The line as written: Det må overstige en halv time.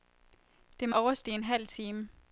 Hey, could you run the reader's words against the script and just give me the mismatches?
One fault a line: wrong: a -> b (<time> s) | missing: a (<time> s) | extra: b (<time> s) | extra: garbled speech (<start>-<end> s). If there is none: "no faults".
no faults